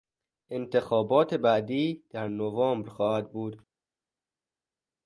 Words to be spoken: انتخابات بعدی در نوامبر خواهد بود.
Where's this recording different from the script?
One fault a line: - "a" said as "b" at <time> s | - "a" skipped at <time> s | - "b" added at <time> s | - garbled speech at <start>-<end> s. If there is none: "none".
none